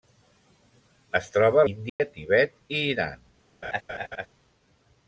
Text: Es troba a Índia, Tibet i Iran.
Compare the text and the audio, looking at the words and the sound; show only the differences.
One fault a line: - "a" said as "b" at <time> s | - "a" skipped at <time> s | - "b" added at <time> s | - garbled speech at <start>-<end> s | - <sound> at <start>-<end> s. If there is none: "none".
- dropout at 1.9-2.0 s
- laugh at 3.6-4.3 s